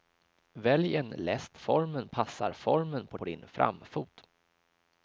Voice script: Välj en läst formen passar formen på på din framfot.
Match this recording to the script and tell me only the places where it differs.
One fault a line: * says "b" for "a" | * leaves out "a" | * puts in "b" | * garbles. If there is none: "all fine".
all fine